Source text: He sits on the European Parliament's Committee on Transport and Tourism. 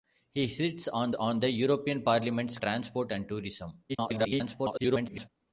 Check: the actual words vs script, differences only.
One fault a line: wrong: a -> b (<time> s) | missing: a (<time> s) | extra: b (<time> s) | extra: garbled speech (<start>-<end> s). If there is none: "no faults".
extra: on (1.1 s)
missing: Committee on (2.6 s)
extra: garbled speech (3.9-5.3 s)